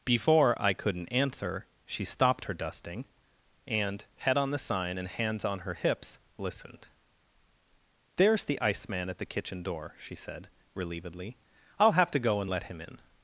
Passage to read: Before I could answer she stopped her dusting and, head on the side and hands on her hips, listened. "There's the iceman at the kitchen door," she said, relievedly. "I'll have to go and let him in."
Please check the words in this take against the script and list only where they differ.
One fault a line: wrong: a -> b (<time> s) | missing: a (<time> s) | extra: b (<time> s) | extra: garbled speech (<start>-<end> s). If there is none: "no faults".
wrong: could -> couldn't (0.7 s)
wrong: side -> sign (4.6 s)